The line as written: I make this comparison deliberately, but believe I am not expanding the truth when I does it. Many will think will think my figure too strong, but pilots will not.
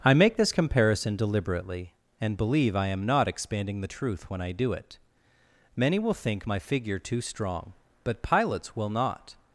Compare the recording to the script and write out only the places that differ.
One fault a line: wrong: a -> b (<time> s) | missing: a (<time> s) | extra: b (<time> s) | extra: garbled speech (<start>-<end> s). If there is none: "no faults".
wrong: but -> and (2.2 s)
wrong: does -> do (4.5 s)
missing: will think (6.5 s)